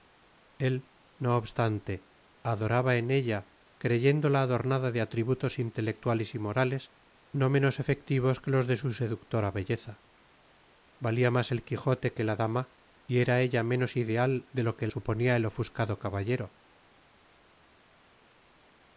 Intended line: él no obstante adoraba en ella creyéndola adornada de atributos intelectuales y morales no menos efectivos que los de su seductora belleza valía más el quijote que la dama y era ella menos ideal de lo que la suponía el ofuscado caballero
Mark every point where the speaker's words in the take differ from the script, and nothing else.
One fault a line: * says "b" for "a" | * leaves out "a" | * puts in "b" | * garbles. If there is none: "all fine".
* leaves out "la"